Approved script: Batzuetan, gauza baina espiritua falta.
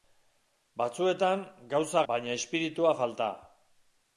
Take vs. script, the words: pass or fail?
pass